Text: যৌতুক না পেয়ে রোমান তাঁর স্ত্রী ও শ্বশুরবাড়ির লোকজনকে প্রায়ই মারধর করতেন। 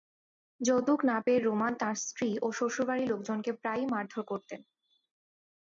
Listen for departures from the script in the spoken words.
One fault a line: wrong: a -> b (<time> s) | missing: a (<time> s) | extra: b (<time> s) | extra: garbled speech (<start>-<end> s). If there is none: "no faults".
no faults